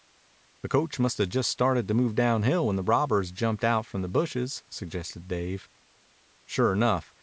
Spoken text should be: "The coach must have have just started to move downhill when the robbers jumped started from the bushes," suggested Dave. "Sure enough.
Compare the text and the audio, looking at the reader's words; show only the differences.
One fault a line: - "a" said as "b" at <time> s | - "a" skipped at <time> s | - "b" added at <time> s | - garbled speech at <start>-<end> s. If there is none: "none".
- "have" skipped at 1.3 s
- "started" said as "out" at 3.6 s